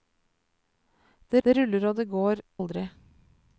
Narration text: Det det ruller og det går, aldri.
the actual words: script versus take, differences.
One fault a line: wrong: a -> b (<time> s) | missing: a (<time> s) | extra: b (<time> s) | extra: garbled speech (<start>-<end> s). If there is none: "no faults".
no faults